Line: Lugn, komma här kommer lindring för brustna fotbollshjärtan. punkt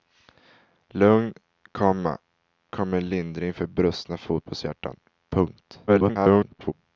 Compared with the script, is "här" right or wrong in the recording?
wrong